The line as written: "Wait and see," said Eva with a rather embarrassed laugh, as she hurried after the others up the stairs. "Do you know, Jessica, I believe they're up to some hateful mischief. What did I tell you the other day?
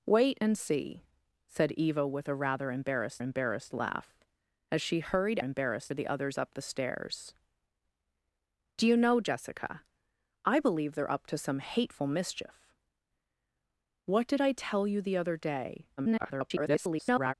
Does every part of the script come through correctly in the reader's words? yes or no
no